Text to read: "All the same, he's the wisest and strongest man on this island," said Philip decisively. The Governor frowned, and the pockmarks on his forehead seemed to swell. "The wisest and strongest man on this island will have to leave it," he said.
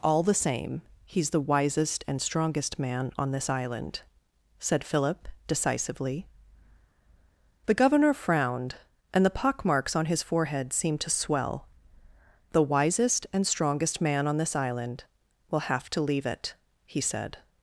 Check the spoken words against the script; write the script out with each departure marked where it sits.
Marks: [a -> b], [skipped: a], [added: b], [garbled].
"All the same, he's the wisest and strongest man on this island," said Philip decisively. The Governor frowned, and the pockmarks on his forehead seemed to swell. "The wisest and strongest man on this island will have to leave it," he said.